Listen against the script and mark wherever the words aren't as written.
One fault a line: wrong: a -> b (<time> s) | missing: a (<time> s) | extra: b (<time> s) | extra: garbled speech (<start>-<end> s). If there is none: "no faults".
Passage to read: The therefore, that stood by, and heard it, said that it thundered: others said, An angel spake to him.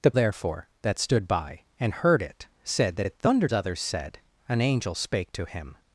no faults